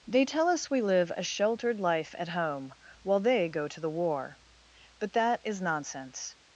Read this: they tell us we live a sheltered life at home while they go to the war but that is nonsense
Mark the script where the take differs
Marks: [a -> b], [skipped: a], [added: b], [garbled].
they tell us we live a sheltered life at home while they go to the war but that is nonsense